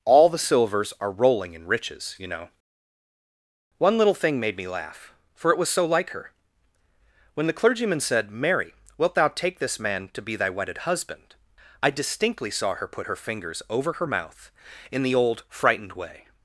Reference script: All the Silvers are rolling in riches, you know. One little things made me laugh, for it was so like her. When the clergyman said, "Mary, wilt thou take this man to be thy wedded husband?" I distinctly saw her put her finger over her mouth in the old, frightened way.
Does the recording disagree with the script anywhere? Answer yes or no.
yes